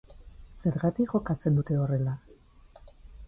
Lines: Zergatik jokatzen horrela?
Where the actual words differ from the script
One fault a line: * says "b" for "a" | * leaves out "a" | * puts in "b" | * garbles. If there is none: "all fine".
* puts in "dute"